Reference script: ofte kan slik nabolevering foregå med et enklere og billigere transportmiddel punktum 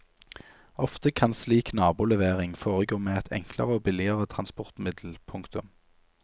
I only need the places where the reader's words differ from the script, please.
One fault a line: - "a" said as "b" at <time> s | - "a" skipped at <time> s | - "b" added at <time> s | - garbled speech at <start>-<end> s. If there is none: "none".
none